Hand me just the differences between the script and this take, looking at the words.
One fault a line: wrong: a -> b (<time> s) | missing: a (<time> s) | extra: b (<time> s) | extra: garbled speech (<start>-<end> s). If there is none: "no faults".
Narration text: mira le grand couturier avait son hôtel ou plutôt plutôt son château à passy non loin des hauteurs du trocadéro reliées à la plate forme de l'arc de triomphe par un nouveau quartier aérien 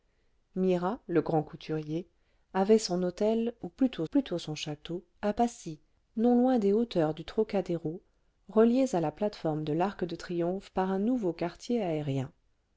no faults